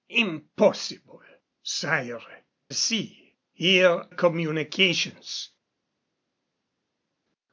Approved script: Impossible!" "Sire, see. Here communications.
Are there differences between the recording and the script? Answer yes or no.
no